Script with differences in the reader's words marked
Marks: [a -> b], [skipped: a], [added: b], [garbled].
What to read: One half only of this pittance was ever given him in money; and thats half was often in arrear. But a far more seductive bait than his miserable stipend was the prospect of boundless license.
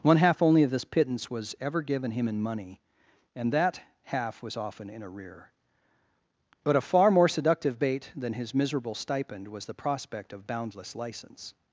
One half only of this pittance was ever given him in money; and [thats -> that] half was often in arrear. But a far more seductive bait than his miserable stipend was the prospect of boundless license.